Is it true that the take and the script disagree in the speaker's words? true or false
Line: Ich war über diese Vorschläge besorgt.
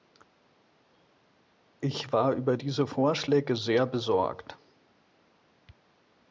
true